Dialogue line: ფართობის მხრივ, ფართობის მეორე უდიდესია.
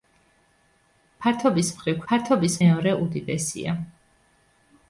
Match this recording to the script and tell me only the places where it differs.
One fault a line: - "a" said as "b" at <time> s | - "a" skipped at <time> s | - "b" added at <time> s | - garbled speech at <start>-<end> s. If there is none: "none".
none